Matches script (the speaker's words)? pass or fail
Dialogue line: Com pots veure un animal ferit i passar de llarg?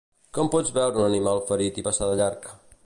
pass